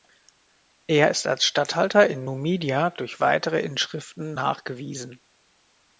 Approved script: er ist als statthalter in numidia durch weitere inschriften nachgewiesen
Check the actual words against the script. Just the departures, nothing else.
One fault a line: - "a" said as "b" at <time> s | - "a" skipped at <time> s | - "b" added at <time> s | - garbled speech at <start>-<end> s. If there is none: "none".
none